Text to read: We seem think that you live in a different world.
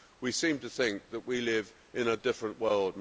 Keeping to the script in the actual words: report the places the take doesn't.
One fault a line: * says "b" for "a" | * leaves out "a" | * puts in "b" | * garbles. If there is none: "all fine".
* puts in "to"
* says "we" for "you"